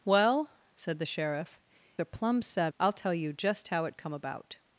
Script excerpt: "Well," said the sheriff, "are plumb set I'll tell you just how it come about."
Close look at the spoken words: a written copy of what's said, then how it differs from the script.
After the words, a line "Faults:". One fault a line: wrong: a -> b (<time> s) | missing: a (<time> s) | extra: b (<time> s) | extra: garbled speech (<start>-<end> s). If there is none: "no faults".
"Well," said the sheriff, "are plumb set I'll tell you just how it come about."
Faults:
no faults